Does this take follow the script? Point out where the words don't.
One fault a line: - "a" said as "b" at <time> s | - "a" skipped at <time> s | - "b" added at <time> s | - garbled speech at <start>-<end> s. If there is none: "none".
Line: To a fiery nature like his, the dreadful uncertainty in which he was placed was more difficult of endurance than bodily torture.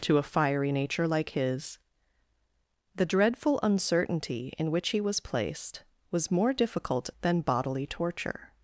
- "of endurance" skipped at 7.1 s